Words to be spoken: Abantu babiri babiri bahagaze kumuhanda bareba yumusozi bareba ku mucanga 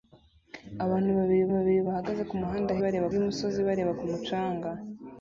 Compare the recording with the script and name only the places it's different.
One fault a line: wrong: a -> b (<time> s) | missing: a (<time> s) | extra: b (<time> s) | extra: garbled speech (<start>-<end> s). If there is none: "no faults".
no faults